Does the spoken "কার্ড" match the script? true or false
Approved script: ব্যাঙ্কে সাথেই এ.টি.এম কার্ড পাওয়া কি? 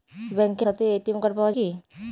true